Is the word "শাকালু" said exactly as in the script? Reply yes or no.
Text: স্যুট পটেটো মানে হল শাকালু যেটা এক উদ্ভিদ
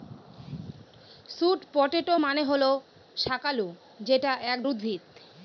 yes